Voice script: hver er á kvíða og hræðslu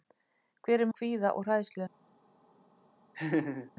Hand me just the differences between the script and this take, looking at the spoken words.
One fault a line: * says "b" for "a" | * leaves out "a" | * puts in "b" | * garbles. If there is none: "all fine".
all fine